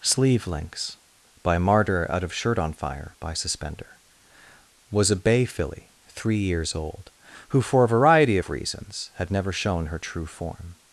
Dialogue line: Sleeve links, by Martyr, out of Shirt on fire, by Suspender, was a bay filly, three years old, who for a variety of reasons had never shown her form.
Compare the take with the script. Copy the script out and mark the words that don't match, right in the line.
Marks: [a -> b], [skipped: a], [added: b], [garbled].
Sleeve links, by Martyr, out of Shirt on fire, by Suspender, was a bay filly, three years old, who for a variety of reasons had never shown her [added: true] form.